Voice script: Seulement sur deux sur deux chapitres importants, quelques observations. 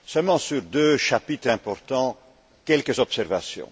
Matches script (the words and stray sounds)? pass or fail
fail